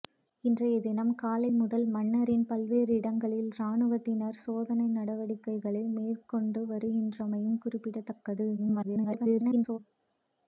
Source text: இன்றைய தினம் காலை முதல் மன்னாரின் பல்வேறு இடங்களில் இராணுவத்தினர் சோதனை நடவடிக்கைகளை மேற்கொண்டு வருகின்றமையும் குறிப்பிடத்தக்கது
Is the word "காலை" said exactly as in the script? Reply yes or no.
yes